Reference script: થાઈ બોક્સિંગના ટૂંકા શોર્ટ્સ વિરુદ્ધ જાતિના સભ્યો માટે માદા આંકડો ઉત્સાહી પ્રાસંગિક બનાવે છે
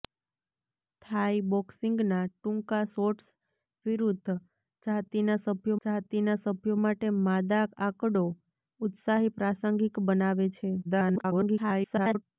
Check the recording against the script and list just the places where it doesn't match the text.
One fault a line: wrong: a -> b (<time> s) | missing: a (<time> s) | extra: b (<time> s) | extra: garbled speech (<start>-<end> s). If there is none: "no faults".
extra: જાતિના સભ્યો (5.8 s)
extra: garbled speech (10.8-12.2 s)